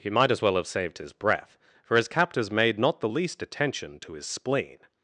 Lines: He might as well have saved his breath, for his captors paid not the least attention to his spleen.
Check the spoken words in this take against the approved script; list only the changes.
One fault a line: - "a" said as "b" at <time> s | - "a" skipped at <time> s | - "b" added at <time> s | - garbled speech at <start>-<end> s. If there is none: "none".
- "paid" said as "made" at 2.5 s